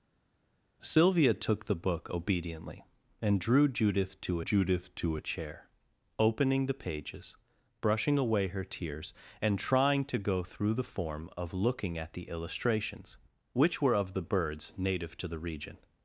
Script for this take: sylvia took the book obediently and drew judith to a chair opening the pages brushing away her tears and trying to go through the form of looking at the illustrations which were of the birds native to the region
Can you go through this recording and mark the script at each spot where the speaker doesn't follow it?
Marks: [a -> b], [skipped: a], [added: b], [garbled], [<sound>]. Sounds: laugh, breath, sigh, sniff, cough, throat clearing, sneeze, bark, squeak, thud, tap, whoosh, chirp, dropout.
sylvia took the book obediently and drew judith to [added: judith to] a chair opening the pages brushing away her tears and trying to go through the form of looking at the illustrations which were of the birds native to the region